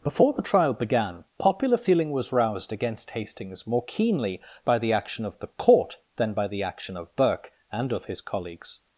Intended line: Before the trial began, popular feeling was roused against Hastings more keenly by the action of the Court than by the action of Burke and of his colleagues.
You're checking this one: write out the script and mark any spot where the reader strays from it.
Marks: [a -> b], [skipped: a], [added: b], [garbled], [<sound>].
Before the trial began, popular feeling was roused against Hastings more keenly by the action of the Court than by the action of Burke and of his colleagues.